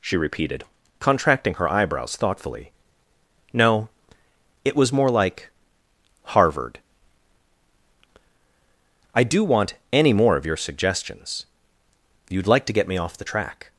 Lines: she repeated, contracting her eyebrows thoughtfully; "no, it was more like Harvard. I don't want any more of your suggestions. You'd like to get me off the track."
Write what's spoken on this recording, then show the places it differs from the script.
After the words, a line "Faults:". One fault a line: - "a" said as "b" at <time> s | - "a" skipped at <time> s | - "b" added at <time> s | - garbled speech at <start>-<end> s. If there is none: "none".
she repeated, contracting her eyebrows thoughtfully; "no, it was more like Harvard. I do want any more of your suggestions. You'd like to get me off the track."
Faults:
- "don't" said as "do" at 9.2 s